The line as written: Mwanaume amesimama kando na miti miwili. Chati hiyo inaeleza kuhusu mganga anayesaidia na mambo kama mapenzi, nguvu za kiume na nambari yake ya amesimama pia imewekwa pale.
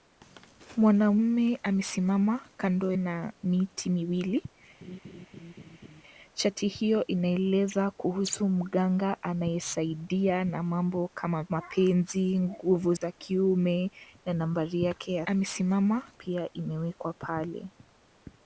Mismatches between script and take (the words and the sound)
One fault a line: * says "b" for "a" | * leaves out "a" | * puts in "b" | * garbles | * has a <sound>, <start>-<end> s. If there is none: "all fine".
* has a laugh, 4.8-6.0 s
* has a dropout, 13.0-13.0 s